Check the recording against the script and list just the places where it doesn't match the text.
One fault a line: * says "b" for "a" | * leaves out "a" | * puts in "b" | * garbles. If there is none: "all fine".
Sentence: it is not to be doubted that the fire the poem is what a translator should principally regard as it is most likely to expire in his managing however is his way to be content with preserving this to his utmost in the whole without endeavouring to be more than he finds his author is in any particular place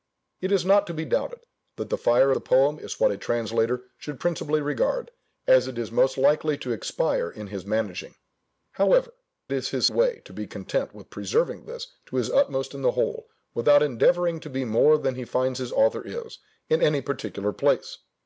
all fine